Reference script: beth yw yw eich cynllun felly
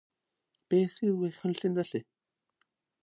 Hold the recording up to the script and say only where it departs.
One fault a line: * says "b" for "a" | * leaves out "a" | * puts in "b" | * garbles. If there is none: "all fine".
* leaves out "yw"